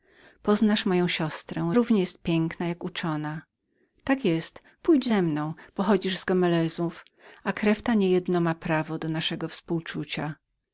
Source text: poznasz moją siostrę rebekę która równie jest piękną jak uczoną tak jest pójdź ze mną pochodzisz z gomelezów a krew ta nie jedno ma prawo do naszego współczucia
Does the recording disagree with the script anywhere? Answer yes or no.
yes